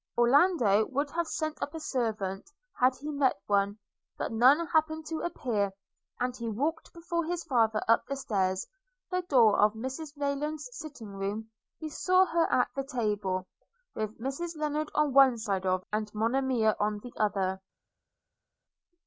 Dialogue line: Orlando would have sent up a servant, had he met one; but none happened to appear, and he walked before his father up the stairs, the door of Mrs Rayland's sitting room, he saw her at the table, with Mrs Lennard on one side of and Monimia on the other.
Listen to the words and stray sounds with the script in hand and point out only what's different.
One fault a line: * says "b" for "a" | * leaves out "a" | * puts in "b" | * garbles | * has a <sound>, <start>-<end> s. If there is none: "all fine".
all fine